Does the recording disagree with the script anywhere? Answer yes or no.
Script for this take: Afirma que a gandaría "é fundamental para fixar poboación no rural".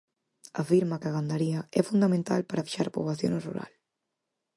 no